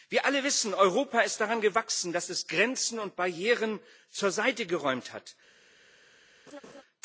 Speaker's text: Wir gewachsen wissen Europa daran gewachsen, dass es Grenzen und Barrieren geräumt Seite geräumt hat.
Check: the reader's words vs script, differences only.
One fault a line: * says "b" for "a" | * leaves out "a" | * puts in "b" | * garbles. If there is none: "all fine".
* says "alle" for "gewachsen"
* puts in "ist"
* says "zur" for "geräumt"